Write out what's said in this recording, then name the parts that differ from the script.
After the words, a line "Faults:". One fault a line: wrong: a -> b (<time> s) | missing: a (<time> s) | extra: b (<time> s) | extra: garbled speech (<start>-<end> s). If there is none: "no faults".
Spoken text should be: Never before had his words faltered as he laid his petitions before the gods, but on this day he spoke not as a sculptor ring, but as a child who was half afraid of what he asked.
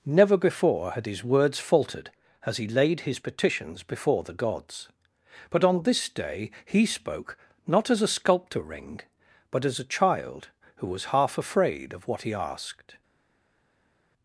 Never before had his words faltered as he laid his petitions before the gods, but on this day he spoke not as a sculptor ring, but as a child who was half afraid of what he asked.
Faults:
no faults